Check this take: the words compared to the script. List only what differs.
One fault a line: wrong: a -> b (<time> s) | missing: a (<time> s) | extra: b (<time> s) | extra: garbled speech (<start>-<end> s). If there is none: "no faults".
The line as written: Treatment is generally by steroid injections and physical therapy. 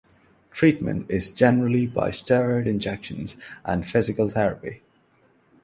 no faults